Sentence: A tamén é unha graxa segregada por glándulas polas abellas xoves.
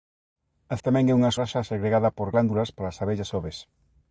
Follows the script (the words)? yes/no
yes